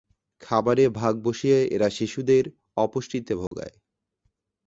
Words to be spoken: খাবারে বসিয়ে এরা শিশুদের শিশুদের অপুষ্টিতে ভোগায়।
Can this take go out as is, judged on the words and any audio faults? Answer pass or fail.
fail